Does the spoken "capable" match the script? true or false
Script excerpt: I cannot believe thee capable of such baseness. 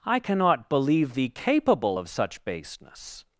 true